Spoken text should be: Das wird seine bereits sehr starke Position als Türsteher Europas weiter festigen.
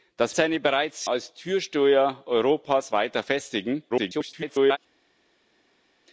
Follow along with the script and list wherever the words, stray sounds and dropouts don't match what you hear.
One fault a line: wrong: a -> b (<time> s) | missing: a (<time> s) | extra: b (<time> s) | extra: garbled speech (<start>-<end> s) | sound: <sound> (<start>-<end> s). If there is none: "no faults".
missing: wird (0.3 s)
missing: sehr starke Position (1.0 s)
extra: garbled speech (3.9-4.8 s)